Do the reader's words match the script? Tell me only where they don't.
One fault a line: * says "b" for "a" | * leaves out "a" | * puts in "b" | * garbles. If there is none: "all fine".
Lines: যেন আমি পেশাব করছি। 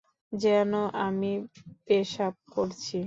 all fine